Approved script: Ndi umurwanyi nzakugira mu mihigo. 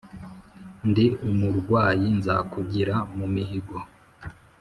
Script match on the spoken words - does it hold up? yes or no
yes